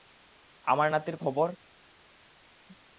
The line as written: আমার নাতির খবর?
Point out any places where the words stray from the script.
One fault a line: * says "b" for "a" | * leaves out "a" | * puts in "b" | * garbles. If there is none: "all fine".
all fine